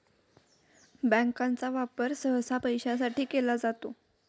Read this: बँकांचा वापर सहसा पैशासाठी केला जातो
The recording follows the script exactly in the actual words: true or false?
true